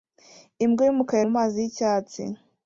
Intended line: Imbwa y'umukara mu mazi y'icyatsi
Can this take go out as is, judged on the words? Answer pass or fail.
pass